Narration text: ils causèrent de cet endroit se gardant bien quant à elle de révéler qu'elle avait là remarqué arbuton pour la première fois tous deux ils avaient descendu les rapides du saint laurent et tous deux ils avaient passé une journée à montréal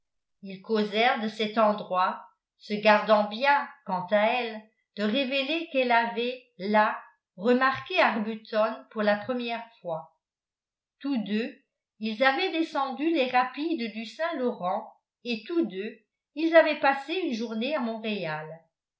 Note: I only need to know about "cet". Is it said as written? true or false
true